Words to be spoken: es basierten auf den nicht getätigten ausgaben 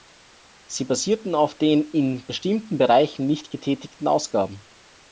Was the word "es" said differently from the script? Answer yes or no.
yes